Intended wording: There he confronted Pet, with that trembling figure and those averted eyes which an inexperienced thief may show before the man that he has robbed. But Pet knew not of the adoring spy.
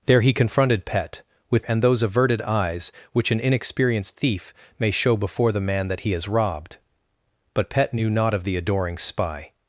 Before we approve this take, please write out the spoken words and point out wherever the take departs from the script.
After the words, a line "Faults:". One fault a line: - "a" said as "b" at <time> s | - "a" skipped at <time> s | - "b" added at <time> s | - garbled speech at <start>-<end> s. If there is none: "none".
There he confronted Pet, with and those averted eyes which an inexperienced thief may show before the man that he has robbed. But Pet knew not of the adoring spy.
Faults:
- "that trembling figure" skipped at 1.6 s